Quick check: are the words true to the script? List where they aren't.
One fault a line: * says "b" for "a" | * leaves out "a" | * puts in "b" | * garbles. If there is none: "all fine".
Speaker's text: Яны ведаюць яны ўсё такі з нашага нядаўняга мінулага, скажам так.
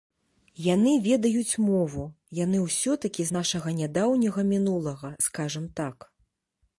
* puts in "мову"